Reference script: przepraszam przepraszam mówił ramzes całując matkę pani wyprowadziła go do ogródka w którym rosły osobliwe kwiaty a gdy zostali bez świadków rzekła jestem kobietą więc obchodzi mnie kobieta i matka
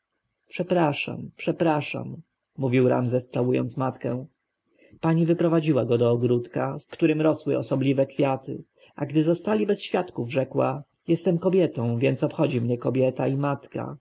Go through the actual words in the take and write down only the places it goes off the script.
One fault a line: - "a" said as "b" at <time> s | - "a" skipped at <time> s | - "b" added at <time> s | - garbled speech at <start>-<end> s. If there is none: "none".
none